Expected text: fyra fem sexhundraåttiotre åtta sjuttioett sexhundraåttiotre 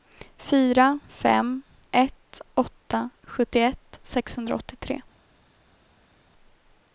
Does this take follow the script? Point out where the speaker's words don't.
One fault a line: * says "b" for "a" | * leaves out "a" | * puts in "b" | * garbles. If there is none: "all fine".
* says "ett" for "sexhundraåttiotre"